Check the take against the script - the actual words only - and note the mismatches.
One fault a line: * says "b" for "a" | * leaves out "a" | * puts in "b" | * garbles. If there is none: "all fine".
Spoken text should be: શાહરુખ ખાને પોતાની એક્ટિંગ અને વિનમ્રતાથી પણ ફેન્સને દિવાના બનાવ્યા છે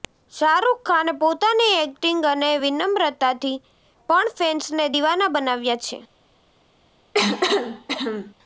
all fine